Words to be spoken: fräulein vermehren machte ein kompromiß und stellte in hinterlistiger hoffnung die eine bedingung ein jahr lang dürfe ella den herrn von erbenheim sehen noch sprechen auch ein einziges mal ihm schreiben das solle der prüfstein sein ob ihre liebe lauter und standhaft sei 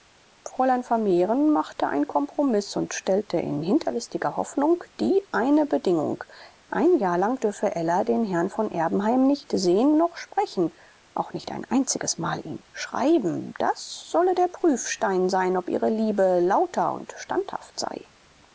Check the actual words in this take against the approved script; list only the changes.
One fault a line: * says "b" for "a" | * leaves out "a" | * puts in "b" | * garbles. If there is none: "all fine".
* puts in "nicht"
* puts in "nicht"